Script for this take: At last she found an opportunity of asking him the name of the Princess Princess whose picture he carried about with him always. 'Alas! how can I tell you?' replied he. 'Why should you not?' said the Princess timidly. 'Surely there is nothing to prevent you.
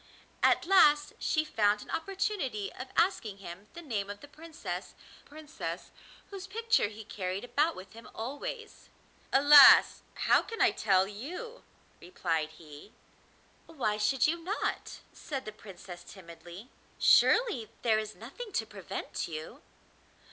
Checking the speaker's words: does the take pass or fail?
pass